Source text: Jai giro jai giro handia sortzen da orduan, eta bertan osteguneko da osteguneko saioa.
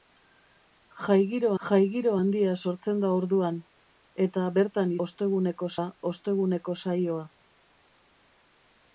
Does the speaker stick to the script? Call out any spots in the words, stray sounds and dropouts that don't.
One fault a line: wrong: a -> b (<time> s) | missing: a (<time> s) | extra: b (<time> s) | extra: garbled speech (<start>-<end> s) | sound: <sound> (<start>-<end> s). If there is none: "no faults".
no faults